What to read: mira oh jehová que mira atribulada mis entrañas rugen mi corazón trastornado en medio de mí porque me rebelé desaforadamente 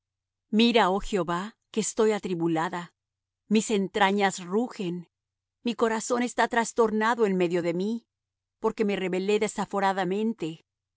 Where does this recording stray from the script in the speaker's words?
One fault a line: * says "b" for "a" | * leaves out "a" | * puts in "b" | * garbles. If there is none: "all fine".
* says "estoy" for "mira"
* puts in "está"